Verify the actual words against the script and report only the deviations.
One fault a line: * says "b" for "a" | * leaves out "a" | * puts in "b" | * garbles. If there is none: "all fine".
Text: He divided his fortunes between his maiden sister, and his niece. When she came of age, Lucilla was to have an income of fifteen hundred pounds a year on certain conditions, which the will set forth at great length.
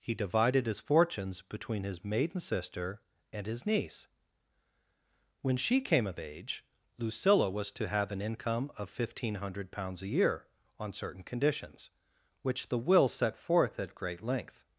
all fine